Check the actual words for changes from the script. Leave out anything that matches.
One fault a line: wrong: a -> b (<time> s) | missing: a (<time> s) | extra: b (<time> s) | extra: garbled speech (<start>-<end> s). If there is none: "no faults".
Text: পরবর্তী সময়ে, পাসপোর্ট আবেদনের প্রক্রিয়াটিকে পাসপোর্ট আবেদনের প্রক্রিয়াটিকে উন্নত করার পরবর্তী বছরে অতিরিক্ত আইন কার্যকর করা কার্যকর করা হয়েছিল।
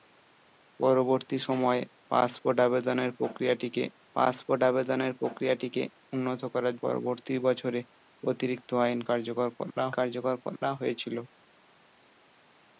no faults